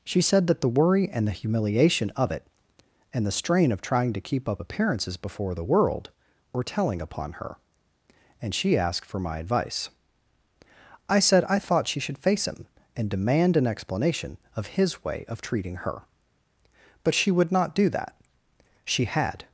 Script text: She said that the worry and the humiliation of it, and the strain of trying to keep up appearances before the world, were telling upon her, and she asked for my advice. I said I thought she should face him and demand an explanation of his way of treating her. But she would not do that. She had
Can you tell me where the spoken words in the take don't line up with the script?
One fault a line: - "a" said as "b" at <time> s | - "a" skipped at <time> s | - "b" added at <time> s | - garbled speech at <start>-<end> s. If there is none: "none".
none